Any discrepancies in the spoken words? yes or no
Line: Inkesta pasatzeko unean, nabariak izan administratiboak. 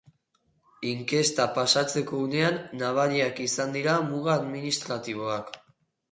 yes